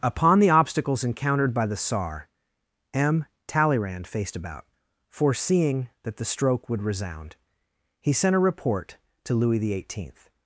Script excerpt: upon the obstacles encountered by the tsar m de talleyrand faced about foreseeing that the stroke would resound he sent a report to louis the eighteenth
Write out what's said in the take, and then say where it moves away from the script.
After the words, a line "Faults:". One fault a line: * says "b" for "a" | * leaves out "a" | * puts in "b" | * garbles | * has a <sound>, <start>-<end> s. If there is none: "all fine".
upon the obstacles encountered by the tsar m talleyrand faced about foreseeing that the stroke would resound he sent a report to louis the eighteenth
Faults:
* leaves out "de"